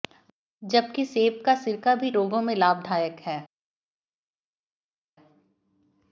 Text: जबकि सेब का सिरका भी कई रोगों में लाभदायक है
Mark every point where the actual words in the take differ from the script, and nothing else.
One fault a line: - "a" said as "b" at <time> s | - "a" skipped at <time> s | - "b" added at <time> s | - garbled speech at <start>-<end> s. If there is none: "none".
- "कई" skipped at 2.1 s